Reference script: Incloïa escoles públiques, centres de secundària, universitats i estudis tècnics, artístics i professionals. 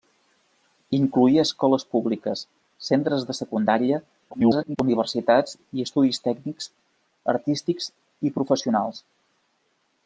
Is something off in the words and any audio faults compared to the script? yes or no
yes